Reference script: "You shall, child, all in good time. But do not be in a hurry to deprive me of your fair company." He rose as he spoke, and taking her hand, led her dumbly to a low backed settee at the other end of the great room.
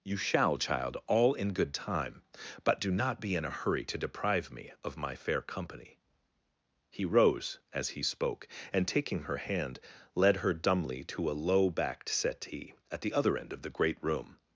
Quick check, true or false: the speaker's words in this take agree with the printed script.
false